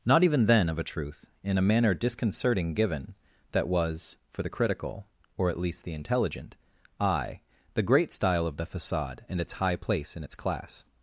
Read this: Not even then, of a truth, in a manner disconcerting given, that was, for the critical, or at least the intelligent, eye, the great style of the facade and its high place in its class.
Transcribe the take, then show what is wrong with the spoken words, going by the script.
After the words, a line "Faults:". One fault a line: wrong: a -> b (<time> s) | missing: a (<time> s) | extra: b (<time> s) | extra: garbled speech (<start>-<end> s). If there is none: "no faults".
Not even then, of a truth, in a manner disconcerting given, that was, for the critical, or at least the intelligent, eye, the great style of the facade and its high place in its class.
Faults:
no faults